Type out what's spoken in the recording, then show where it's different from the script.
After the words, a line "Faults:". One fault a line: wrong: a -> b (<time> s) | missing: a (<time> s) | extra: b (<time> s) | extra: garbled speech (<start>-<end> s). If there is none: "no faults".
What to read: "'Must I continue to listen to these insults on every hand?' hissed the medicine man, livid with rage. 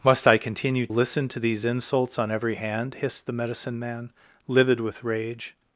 "'Must I continue listen to these insults on every hand?' hissed the medicine man, livid with rage.
Faults:
missing: to (0.9 s)